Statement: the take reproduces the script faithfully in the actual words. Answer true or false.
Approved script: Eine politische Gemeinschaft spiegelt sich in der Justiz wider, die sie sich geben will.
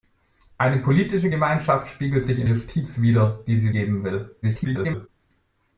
false